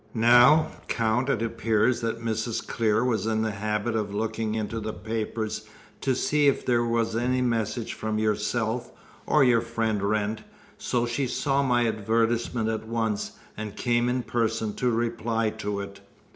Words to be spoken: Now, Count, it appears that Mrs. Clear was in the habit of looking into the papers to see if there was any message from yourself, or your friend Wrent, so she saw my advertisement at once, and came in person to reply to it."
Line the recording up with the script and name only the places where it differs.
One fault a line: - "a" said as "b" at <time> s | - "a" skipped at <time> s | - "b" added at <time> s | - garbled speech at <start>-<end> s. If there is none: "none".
none